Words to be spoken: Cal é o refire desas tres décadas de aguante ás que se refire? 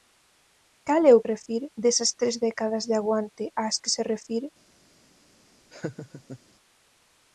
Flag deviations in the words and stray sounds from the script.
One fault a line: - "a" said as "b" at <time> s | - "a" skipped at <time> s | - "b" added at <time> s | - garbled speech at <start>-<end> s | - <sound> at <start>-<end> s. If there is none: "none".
- laugh at 5.7-6.4 s